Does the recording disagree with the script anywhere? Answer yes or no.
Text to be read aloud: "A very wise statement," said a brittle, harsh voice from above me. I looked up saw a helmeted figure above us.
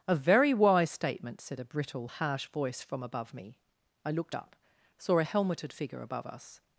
no